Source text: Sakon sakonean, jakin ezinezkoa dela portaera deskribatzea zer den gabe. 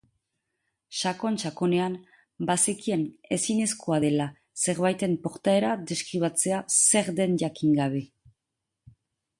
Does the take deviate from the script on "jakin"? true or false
true